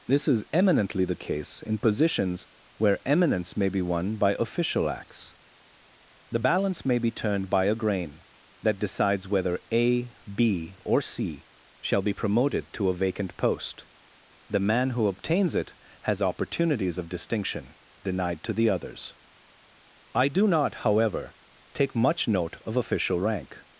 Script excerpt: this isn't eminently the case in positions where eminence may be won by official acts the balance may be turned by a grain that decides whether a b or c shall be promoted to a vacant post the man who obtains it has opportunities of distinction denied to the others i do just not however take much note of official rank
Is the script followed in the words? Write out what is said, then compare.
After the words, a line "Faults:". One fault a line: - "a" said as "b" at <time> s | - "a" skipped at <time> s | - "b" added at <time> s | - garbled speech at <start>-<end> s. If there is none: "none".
this is eminently the case in positions where eminence may be won by official acts the balance may be turned by a grain that decides whether a b or c shall be promoted to a vacant post the man who obtains it has opportunities of distinction denied to the others i do not however take much note of official rank
Faults:
- "isn't" said as "is" at 0.3 s
- "just" skipped at 20.5 s